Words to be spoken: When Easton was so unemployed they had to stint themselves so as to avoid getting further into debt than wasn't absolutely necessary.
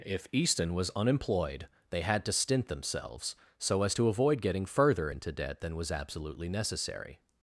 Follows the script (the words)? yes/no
no